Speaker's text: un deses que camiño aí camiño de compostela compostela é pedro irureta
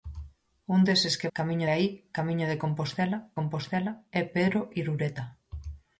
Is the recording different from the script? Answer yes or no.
no